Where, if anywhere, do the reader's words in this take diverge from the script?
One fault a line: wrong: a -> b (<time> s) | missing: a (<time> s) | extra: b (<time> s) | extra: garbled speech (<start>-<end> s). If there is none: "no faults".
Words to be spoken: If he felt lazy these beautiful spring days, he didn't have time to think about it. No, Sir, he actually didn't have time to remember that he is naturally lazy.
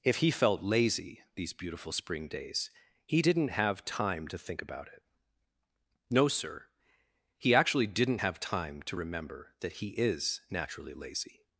no faults